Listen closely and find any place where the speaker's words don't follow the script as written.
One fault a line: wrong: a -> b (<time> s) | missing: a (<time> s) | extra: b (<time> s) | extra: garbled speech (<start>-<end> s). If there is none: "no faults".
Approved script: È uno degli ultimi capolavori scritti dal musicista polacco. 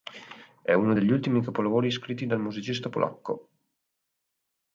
no faults